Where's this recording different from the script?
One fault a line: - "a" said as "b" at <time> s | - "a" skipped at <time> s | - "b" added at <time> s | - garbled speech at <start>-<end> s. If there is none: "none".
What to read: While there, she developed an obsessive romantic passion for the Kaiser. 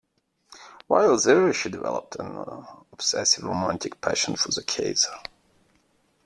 none